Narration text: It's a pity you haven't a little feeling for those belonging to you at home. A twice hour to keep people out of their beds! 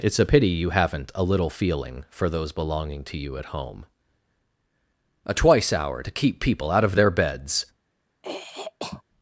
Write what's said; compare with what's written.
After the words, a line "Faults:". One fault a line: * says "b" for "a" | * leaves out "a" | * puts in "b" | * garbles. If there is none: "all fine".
It's a pity you haven't a little feeling for those belonging to you at home. A twice hour to keep people out of their beds!
Faults:
all fine